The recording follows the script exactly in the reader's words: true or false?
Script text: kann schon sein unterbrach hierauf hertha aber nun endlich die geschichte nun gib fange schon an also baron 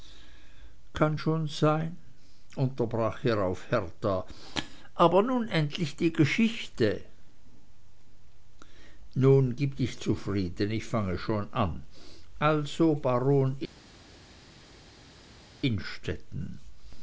false